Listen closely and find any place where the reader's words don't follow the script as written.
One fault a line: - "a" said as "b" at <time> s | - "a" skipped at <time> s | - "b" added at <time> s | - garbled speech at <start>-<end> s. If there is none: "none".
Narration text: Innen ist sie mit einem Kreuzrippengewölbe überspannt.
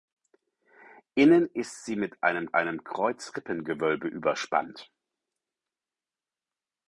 - "einem" added at 2.5 s